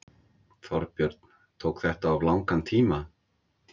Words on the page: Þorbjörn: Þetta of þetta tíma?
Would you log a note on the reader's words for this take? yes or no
yes